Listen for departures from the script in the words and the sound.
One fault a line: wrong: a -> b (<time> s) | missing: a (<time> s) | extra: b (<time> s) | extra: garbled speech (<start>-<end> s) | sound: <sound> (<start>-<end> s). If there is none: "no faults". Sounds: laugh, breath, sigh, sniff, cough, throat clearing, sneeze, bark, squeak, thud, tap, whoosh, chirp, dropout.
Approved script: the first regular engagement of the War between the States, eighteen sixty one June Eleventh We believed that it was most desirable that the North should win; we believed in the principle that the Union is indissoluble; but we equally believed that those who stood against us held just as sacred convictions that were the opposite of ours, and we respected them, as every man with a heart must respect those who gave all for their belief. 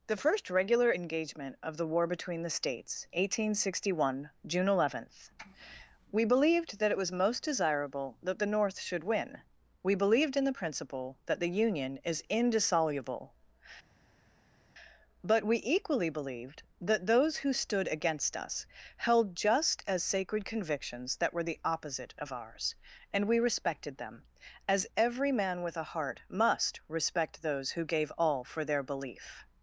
no faults